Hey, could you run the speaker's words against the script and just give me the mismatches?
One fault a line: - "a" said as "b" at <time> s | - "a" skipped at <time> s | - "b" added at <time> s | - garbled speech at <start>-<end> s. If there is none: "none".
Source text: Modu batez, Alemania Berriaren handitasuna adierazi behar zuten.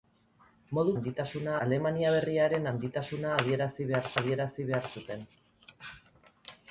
- "batez" said as "handitasuna" at 1.0 s
- "adierazi behar" added at 4.2 s